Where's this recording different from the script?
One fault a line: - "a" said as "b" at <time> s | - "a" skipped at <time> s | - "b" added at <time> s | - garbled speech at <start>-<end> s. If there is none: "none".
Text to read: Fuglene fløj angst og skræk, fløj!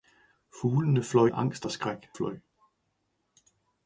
none